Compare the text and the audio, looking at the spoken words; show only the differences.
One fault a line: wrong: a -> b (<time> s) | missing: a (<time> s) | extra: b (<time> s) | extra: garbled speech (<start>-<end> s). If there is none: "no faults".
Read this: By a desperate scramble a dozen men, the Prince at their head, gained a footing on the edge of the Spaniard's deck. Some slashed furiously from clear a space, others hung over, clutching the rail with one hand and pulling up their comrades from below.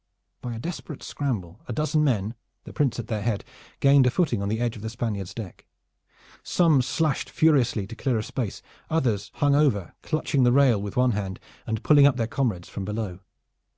wrong: from -> to (7.8 s)